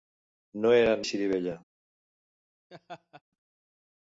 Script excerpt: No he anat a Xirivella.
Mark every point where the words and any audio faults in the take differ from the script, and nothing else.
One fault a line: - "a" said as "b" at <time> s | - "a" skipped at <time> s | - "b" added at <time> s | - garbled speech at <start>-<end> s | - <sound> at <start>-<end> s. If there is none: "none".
- laugh at 2.7-3.2 s